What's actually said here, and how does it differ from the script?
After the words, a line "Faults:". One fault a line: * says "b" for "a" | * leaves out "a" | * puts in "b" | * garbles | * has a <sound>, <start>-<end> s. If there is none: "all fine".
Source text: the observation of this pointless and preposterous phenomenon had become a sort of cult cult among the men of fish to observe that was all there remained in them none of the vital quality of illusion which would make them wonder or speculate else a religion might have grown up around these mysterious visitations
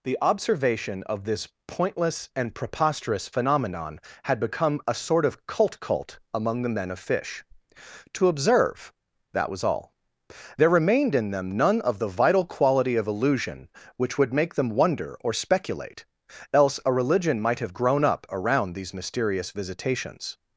the observation of this pointless and preposterous phenomenon had become a sort of cult cult among the men of fish to observe that was all there remained in them none of the vital quality of illusion which would make them wonder or speculate else a religion might have grown up around these mysterious visitations
Faults:
all fine